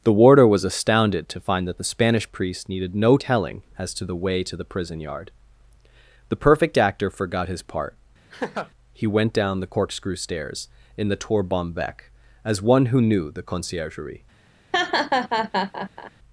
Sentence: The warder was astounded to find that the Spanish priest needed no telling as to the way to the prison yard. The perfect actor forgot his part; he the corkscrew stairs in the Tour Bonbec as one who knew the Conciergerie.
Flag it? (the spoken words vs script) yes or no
yes